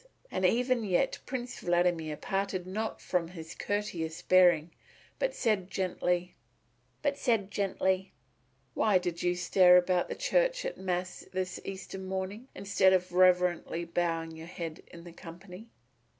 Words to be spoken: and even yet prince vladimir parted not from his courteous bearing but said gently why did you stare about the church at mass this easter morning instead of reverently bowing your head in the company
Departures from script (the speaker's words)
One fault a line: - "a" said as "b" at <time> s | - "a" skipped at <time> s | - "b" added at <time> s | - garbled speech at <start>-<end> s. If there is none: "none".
- "but said gently" added at 7.0 s